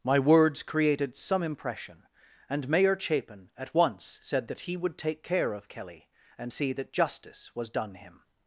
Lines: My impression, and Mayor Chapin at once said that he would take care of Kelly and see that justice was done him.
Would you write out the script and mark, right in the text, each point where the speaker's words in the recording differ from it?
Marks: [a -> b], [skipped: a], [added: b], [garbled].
My [added: words created some] impression, and Mayor Chapin at once said that he would take care of Kelly and see that justice was done him.